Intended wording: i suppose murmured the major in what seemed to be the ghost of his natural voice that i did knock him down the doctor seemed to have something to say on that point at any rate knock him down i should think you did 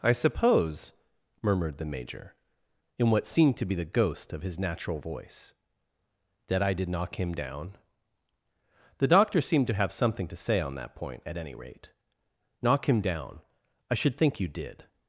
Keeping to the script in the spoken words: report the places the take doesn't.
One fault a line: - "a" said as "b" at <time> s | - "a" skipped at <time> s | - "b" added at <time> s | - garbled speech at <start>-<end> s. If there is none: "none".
none